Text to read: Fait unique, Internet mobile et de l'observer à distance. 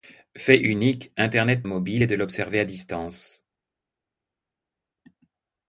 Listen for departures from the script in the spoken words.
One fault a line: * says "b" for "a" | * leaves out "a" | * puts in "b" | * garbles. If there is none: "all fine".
all fine